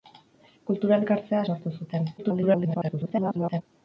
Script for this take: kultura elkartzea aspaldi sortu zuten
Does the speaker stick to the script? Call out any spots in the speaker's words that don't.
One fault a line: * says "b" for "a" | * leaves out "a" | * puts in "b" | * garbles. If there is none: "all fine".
* leaves out "aspaldi"
* garbles